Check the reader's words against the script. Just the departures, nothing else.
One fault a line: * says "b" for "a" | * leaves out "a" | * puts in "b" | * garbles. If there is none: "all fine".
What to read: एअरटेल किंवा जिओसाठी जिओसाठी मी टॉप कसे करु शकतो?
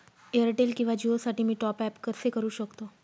* leaves out "जिओसाठी"
* puts in "ॲप"